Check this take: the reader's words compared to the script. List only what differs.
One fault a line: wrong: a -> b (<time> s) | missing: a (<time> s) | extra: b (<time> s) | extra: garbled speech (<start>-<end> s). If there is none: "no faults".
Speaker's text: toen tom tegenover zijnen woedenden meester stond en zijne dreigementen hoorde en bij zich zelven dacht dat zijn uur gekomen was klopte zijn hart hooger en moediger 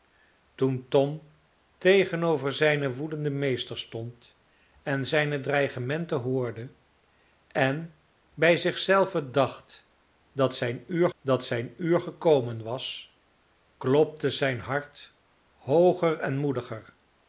extra: dat zijn uur (11.2 s)